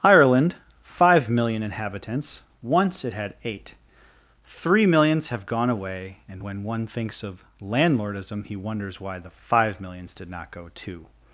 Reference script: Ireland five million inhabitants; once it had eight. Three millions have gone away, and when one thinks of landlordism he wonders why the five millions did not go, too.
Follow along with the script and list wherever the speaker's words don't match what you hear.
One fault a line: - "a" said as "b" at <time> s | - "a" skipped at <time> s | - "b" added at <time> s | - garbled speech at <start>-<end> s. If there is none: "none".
none